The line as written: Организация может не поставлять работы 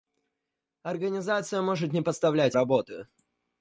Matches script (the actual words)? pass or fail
pass